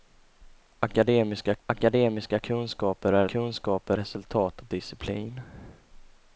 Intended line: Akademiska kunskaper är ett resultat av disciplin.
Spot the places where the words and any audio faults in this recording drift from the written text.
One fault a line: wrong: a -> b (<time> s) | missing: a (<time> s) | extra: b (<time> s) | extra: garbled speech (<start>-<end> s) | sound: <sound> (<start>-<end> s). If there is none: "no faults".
extra: akademiska (1.7 s)
wrong: ett -> kunskaper (3.2 s)